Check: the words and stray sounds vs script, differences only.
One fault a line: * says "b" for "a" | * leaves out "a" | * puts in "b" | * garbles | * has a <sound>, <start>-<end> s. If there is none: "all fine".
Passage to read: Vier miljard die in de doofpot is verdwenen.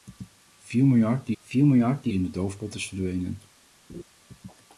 * puts in "vier miljard die"
* has a laugh, 3.9-4.0 s